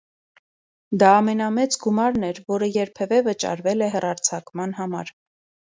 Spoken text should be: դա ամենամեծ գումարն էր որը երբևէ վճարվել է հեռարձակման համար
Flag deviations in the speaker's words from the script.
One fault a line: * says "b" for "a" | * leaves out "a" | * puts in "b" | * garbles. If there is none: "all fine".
all fine